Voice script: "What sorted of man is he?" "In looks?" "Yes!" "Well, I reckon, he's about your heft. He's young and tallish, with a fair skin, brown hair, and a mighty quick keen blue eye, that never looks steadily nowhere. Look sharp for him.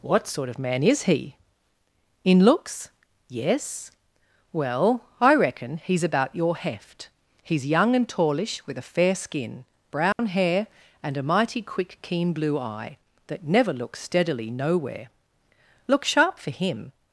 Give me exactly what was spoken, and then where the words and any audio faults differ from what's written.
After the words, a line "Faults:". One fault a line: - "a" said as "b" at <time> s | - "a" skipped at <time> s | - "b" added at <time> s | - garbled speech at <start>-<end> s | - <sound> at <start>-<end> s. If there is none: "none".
"What sort of man is he?" "In looks?" "Yes!" "Well, I reckon, he's about your heft. He's young and tallish, with a fair skin, brown hair, and a mighty quick keen blue eye, that never looks steadily nowhere. Look sharp for him.
Faults:
- "sorted" said as "sort" at 0.2 s
- dropout at 10.1-10.2 s